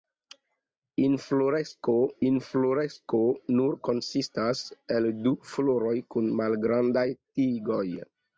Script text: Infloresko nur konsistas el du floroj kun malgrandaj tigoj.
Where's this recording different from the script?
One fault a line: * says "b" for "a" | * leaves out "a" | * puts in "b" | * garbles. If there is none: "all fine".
* puts in "infloresko"